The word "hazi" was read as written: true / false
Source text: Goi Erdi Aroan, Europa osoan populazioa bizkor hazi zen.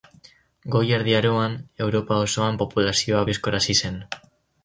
true